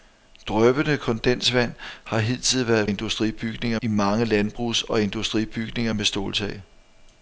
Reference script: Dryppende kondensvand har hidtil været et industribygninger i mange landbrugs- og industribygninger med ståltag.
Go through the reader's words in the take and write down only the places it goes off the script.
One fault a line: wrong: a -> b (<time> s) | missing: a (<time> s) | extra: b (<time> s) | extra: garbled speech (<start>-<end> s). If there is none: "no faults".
no faults